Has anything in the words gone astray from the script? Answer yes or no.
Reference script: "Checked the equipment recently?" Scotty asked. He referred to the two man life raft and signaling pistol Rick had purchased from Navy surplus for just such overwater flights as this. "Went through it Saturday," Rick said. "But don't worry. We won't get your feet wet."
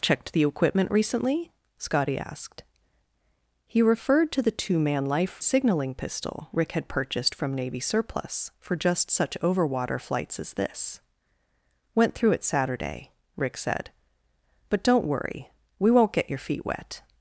yes